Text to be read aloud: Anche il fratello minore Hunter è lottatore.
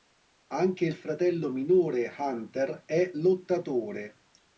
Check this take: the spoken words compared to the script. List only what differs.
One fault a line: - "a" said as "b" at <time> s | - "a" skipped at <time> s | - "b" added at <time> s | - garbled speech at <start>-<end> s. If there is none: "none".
none